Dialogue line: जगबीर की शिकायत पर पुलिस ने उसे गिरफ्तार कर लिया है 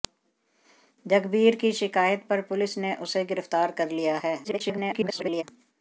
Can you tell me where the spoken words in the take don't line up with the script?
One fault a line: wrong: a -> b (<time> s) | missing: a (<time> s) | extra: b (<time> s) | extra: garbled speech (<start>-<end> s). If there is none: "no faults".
extra: garbled speech (4.4-5.4 s)